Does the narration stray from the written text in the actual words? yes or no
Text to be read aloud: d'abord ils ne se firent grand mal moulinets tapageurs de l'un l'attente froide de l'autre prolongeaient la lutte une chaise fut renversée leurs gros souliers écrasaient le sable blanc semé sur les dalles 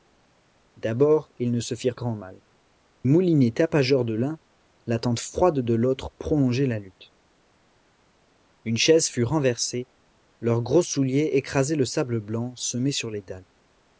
no